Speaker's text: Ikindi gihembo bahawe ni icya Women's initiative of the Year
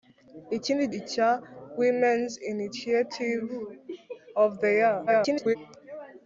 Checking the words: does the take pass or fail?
fail